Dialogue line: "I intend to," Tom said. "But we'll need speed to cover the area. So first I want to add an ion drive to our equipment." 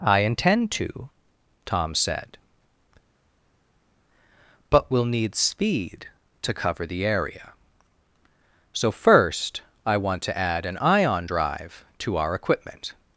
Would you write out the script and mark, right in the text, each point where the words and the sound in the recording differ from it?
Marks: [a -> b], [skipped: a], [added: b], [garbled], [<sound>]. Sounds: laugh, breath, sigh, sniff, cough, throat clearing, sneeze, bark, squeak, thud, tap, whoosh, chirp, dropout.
"I intend to," Tom said. "But we'll need speed to cover the area. So first I want to add an ion drive to our equipment."